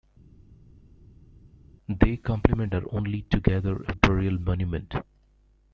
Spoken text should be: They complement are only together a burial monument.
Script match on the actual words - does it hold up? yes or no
yes